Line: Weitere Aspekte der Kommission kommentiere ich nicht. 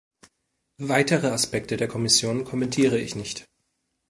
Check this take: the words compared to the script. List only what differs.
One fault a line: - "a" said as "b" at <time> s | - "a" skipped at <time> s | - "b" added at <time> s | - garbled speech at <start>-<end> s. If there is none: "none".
none